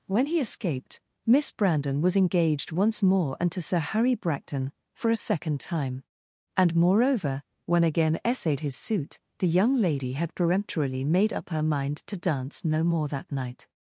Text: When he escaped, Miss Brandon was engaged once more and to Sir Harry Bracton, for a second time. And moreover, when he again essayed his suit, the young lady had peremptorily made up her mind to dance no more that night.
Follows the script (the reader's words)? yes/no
no